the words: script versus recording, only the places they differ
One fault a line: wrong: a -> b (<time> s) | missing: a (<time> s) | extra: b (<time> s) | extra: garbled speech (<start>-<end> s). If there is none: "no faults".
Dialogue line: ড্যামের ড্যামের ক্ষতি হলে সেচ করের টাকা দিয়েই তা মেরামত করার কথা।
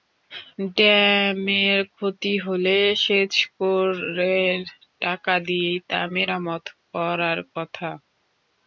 missing: ড্যামের (1.8 s)